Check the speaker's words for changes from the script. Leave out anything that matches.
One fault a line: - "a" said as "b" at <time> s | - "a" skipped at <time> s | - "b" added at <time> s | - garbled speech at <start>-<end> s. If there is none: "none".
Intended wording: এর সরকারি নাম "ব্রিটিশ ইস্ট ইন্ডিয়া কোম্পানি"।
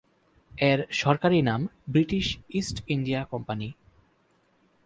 none